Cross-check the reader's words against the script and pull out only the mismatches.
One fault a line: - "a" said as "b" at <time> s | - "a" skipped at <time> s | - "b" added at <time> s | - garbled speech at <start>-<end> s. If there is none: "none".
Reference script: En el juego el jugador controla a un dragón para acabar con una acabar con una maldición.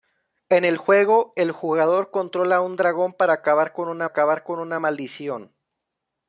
none